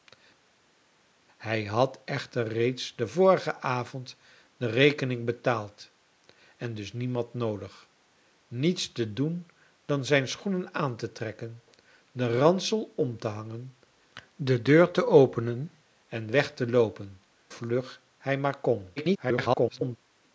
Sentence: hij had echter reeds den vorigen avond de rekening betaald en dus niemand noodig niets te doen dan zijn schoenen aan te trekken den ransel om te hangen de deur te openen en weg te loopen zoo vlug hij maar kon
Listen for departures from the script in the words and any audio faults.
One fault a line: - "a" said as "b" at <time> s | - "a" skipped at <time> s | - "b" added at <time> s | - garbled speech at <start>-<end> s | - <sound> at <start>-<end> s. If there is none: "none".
- "zoo" skipped at 17.2 s
- garbled speech at 19.0-20.0 s